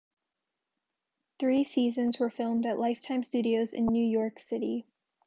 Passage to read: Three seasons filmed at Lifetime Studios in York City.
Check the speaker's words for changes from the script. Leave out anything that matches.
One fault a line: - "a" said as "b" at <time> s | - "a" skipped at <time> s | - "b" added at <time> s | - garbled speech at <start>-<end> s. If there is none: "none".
- "were" added at 2.2 s
- "New" added at 3.9 s